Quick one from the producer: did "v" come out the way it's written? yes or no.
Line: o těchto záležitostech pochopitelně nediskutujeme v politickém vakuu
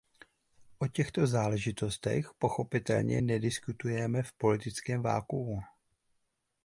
yes